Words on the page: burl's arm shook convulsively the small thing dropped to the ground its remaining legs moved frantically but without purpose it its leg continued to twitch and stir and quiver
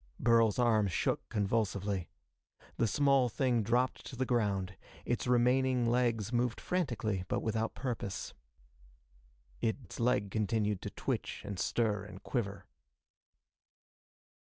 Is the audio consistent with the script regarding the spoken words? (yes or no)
yes